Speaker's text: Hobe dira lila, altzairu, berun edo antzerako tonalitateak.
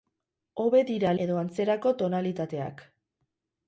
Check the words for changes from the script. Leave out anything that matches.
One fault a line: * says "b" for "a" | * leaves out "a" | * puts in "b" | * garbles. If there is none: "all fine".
* leaves out "lila altzairu berun"